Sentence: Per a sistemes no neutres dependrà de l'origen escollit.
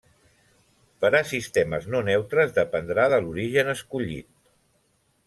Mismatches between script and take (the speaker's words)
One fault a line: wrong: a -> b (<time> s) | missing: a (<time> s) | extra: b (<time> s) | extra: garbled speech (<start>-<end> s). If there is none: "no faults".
no faults